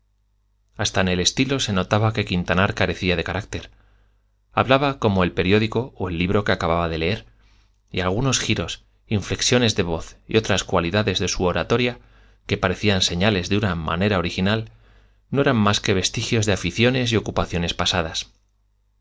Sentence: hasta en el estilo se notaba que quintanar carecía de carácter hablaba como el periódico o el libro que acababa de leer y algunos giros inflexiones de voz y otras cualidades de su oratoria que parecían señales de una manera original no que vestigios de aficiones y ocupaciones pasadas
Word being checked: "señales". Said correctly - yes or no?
yes